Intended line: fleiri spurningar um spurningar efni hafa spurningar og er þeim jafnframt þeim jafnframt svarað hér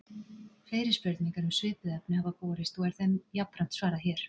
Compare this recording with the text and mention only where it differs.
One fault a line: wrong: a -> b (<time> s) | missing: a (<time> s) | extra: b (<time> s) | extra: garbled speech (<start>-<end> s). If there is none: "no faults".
wrong: spurningar -> svipuð (1.6 s)
wrong: spurningar -> borist (2.5 s)
missing: þeim jafnframt (3.8 s)